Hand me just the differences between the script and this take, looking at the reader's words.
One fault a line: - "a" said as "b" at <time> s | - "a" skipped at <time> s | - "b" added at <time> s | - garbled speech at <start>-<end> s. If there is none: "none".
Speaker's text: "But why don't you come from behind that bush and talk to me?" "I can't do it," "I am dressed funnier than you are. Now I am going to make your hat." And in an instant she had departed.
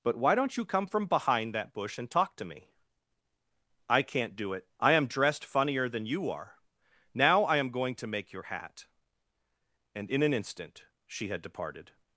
none